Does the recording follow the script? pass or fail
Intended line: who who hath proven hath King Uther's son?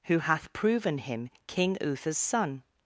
fail